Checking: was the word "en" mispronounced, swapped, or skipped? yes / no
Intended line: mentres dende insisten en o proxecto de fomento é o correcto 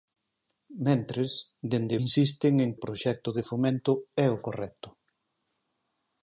no